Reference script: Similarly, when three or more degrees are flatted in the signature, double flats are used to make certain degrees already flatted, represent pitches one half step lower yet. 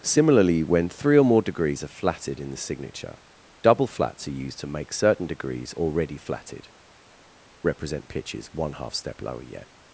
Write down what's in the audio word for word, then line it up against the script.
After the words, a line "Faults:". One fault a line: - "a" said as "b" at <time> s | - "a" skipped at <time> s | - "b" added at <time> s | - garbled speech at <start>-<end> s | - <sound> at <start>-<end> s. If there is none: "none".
Similarly, when three or more degrees are flatted in the signature, double flats are used to make certain degrees already flatted, represent pitches one half step lower yet.
Faults:
none